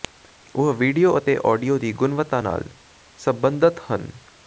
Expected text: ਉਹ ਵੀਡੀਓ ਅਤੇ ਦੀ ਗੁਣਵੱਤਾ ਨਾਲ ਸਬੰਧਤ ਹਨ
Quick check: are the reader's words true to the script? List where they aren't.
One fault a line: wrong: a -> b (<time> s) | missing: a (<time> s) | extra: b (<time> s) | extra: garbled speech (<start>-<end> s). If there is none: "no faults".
extra: ਆਡੀਓ (1.5 s)